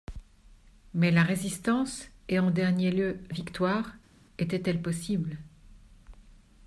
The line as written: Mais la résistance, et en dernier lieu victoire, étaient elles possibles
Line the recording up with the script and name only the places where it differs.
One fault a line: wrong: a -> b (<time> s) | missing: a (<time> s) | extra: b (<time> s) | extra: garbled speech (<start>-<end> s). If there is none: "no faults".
no faults